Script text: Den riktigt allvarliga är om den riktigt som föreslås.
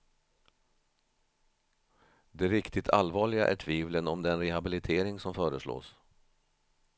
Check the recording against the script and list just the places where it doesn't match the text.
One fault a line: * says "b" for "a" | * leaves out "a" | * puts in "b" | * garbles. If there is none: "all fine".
* says "Det" for "Den"
* puts in "tvivlen"
* says "rehabilitering" for "riktigt"